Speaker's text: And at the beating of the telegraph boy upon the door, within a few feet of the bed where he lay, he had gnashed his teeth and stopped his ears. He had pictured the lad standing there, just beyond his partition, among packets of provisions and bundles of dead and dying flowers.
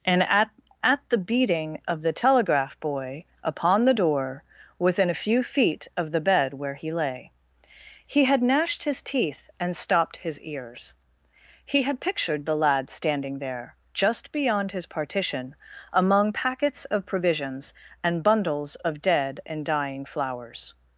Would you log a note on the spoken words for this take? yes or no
yes